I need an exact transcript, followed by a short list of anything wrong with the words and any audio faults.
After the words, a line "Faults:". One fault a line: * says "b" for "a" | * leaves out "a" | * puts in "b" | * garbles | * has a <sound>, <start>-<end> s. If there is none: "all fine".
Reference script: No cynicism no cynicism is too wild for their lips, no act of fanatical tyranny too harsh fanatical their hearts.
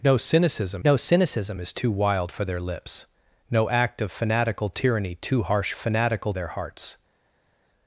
No cynicism no cynicism is too wild for their lips, no act of fanatical tyranny too harsh fanatical their hearts.
Faults:
all fine